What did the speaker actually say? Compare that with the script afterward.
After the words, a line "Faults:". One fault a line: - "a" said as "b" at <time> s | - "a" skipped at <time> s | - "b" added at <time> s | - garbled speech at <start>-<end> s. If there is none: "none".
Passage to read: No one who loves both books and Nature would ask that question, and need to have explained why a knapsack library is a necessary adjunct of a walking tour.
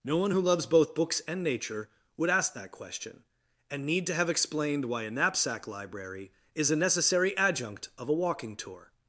No one who loves both books and Nature would ask that question, and need to have explained why a knapsack library is a necessary adjunct of a walking tour.
Faults:
none